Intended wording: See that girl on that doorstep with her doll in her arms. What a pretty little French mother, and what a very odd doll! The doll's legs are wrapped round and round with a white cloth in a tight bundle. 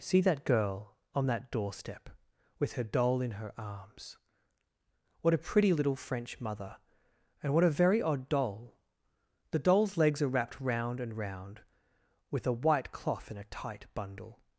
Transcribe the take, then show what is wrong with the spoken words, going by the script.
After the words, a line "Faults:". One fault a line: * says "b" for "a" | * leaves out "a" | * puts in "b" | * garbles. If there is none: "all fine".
See that girl on that doorstep with her doll in her arms. What a pretty little French mother, and what a very odd doll! The doll's legs are wrapped round and round with a white cloth in a tight bundle.
Faults:
all fine